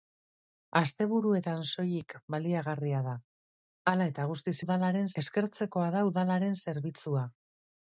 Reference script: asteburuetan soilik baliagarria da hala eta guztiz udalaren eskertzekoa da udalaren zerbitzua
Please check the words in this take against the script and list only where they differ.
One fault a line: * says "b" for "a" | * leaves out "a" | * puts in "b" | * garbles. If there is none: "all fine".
all fine